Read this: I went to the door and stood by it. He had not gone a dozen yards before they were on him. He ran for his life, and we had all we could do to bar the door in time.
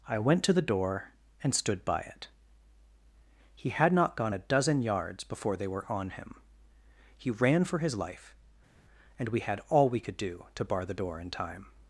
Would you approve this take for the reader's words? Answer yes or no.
yes